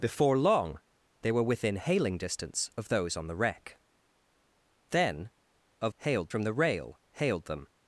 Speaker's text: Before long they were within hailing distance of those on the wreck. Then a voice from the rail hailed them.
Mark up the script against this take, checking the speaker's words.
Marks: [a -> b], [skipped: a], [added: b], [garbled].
Before long they were within hailing distance of those on the wreck. Then a [voice -> hailed] from the rail hailed them.